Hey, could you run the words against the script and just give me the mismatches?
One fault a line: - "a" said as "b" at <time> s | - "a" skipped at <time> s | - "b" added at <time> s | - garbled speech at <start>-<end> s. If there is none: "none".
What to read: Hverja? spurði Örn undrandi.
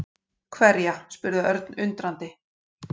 none